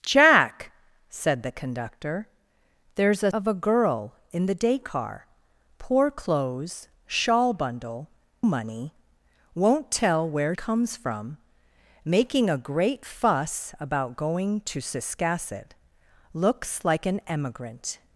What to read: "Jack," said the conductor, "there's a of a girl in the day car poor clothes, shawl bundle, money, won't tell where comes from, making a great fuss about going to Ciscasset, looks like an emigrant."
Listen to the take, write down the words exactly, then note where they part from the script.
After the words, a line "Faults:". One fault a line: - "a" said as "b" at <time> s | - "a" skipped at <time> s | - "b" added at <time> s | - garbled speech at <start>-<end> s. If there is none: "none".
"Jack," said the conductor, "there's a of a girl in the day car poor clothes, shawl bundle, money, won't tell where comes from, making a great fuss about going to Ciscasset, looks like an emigrant."
Faults:
none